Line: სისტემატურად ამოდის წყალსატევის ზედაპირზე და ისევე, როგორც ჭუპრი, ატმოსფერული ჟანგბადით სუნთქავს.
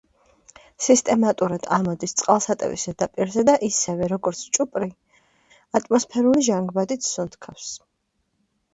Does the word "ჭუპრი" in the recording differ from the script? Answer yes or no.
no